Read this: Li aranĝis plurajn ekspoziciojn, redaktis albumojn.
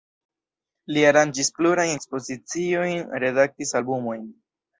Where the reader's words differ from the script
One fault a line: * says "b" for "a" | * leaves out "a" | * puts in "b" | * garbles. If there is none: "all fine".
all fine